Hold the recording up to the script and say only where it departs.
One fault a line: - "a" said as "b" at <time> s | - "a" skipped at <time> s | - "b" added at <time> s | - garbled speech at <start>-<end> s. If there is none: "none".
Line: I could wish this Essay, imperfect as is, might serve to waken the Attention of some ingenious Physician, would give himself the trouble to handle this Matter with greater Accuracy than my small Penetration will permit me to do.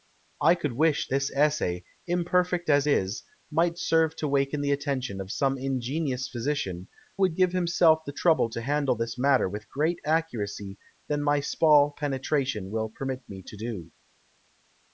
none